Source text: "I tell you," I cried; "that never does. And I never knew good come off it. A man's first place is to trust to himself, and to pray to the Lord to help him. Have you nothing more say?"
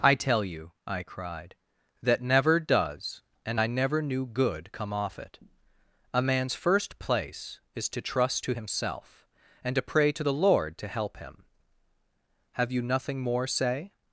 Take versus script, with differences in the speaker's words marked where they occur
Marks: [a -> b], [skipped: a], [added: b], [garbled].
"I tell you," I cried; "that never does. And I never knew good come off it. A man's first place is to trust to himself, and to pray to the Lord to help him. Have you nothing more say?"